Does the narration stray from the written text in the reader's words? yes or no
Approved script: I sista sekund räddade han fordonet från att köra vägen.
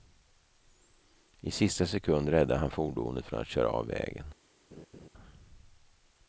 yes